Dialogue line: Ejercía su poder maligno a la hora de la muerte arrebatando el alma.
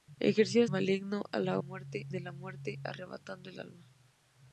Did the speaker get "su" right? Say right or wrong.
wrong